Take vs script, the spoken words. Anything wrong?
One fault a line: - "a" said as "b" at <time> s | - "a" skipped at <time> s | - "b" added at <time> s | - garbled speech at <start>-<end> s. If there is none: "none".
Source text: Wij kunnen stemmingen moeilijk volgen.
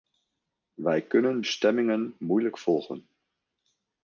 none